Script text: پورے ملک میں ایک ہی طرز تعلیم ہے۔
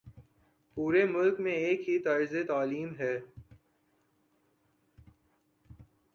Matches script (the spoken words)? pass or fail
pass